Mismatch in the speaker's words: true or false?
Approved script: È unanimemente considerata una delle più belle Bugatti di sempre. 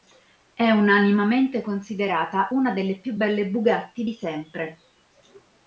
false